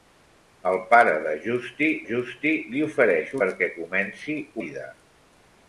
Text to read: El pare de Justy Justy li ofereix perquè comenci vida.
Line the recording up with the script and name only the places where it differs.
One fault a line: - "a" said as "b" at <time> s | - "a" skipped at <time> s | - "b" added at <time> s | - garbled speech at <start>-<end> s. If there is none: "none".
none